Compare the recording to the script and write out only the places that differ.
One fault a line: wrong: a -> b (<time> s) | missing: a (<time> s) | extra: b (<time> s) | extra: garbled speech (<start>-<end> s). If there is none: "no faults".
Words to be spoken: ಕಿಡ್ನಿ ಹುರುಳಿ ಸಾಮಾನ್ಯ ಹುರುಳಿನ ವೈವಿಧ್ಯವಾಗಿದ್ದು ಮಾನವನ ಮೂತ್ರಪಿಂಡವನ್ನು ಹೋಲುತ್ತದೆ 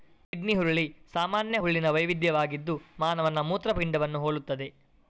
no faults